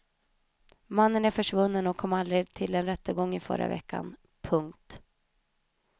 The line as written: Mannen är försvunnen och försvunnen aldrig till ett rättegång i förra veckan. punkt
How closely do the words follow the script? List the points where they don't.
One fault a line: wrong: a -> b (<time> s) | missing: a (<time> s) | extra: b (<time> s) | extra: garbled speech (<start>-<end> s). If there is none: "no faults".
wrong: försvunnen -> kom (2.0 s)
wrong: ett -> en (2.8 s)